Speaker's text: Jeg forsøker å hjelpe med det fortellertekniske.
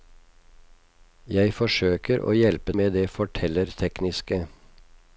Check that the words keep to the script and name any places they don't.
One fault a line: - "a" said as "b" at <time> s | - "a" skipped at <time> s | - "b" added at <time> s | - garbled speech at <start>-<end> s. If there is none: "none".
none